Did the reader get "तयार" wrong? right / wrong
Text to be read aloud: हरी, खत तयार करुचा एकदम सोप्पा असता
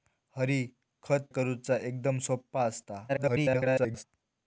wrong